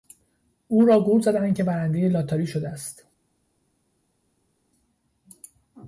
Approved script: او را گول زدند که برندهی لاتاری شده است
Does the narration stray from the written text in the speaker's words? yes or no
no